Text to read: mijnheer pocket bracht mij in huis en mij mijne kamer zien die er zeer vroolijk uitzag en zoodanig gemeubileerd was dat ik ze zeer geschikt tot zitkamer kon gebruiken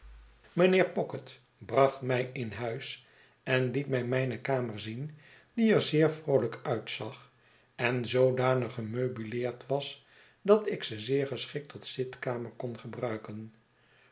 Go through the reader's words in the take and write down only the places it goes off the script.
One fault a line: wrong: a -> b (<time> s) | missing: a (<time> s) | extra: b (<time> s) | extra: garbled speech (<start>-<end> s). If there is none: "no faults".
extra: liet (3.7 s)